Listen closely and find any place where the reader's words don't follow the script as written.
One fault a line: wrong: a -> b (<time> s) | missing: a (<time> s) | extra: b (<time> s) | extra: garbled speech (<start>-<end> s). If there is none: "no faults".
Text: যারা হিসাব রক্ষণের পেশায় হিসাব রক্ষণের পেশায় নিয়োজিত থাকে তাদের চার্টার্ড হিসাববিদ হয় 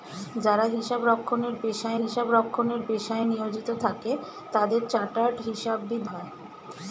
no faults